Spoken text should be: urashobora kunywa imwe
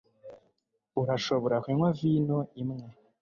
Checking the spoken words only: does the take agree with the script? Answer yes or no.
no